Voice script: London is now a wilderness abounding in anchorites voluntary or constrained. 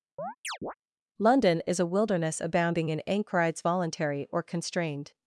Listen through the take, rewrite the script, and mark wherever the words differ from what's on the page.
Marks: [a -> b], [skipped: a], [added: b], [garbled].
London is [skipped: now] a wilderness abounding in anchorites voluntary or constrained.